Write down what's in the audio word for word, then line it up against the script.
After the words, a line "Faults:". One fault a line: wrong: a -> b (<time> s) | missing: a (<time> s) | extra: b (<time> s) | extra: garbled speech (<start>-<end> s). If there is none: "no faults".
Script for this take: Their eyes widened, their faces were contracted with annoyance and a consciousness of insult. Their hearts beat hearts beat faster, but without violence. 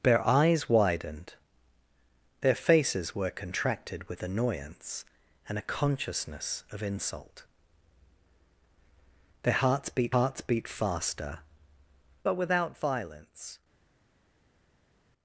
Their eyes widened, their faces were contracted with annoyance and a consciousness of insult. Their hearts beat hearts beat faster, but without violence.
Faults:
no faults